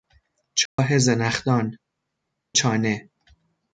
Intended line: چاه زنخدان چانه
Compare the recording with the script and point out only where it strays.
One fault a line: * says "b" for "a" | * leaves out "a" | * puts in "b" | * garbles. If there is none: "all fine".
all fine